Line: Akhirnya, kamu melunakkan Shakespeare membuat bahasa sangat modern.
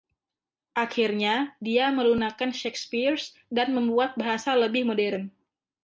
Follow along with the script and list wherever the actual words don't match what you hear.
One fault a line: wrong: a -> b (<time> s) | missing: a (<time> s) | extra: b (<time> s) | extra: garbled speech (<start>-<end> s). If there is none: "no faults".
wrong: kamu -> dia (1.6 s)
extra: dan (3.5 s)
wrong: sangat -> lebih (4.5 s)